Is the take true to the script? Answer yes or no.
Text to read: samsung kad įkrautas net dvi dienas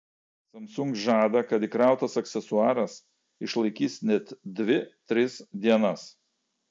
no